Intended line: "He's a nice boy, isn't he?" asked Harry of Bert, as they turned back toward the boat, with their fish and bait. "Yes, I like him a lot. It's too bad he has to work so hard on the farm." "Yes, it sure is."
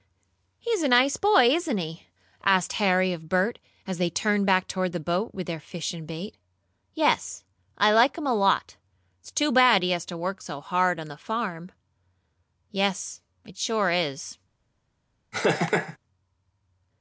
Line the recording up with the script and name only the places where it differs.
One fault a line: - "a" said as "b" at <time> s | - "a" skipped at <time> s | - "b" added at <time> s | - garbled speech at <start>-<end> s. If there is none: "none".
none